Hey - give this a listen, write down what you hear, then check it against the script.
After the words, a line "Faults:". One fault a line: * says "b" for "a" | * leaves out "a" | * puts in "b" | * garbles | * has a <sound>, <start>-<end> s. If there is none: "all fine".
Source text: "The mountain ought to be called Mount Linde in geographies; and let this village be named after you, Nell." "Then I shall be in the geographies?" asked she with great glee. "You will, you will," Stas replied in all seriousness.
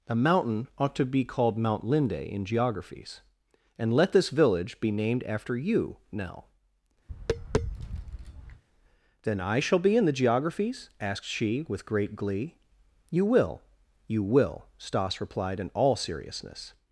"A mountain ought to be called Mount Linde in geographies; and let this village be named after you, Nell." "Then I shall be in the geographies?" asked she with great glee. "You will, you will," Stas replied in all seriousness.
Faults:
* says "A" for "The"
* has a tap, 7.1-8.6 s